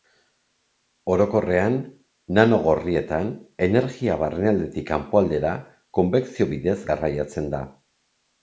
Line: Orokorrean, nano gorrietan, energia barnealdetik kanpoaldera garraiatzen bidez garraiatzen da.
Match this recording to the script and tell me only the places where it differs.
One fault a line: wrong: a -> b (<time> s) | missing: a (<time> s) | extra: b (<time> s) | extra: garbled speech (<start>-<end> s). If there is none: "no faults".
wrong: garraiatzen -> konbekzio (6.0 s)